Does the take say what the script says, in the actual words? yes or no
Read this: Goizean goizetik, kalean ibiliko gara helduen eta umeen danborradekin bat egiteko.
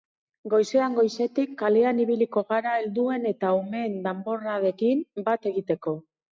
yes